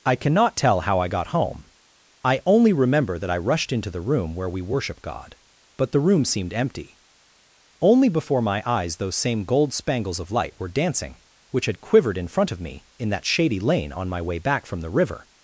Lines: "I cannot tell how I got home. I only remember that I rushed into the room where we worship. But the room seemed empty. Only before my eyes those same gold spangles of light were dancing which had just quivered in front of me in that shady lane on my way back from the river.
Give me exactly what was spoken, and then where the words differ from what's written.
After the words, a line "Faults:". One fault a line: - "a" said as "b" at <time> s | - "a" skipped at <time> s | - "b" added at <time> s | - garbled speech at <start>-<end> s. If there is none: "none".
"I cannot tell how I got home. I only remember that I rushed into the room where we worship God. But the room seemed empty. Only before my eyes those same gold spangles of light were dancing which had quivered in front of me in that shady lane on my way back from the river.
Faults:
- "God" added at 5.0 s
- "just" skipped at 11.8 s